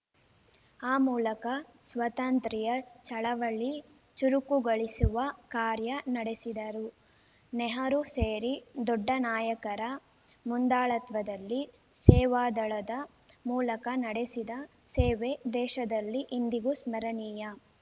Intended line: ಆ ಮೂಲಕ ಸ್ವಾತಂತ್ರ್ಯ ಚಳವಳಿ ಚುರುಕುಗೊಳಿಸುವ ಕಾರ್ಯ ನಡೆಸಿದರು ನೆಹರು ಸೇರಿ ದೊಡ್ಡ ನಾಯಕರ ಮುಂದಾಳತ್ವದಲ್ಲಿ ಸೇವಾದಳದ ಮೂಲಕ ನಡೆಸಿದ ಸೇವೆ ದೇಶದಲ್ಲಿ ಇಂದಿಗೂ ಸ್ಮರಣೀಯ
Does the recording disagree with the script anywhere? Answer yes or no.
no